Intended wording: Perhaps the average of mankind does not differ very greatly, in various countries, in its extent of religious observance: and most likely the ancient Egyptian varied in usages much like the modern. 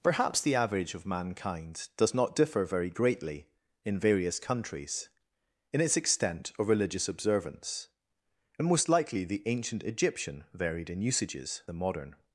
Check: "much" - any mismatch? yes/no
yes